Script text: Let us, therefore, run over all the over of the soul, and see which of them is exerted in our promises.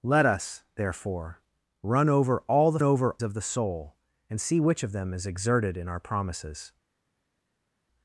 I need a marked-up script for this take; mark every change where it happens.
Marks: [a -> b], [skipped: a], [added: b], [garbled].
Let us, therefore, run over all the over of the soul, and see which of them is exerted in our promises.